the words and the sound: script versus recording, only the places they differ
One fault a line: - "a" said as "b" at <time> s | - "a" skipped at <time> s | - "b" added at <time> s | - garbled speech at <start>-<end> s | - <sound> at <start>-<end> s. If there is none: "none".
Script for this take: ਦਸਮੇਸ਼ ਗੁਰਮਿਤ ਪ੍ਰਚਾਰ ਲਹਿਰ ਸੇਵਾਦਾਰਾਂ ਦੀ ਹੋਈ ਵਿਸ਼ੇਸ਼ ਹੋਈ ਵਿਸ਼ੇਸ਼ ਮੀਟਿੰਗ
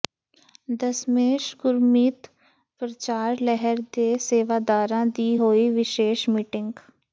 - "ਦੇ" added at 3.9 s
- "ਹੋਈ ਵਿਸ਼ੇਸ਼" skipped at 6.3 s